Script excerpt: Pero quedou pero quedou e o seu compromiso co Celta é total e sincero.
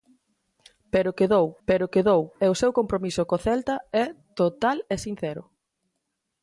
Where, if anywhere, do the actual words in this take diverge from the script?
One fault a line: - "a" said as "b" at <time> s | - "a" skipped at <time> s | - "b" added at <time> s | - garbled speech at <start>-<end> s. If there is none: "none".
none